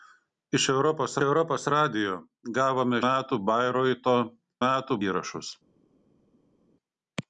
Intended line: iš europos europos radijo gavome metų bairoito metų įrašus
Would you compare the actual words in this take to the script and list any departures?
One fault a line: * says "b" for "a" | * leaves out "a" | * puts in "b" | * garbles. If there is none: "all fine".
all fine